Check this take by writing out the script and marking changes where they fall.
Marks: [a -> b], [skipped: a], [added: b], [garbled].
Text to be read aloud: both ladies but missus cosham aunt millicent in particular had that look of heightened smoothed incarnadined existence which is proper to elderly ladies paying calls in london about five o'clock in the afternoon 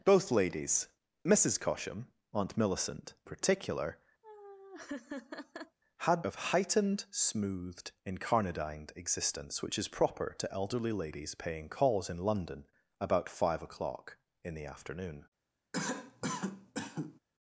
both ladies [skipped: but] missus cosham aunt millicent [skipped: in] particular had [skipped: that look] of heightened smoothed incarnadined existence which is proper to elderly ladies paying calls in london about five o'clock in the afternoon